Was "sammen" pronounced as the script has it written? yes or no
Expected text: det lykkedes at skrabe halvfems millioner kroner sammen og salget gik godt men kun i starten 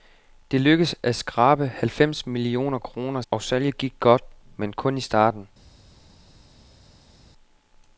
no